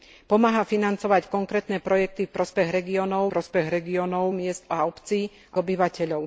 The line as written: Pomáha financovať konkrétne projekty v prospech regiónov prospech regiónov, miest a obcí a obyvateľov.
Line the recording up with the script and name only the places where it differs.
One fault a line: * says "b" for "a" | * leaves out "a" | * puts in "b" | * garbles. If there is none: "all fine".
all fine